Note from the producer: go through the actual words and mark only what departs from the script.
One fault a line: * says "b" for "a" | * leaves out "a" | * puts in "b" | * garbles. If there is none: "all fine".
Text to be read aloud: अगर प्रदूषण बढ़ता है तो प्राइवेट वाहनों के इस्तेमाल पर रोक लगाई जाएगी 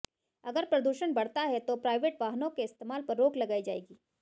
all fine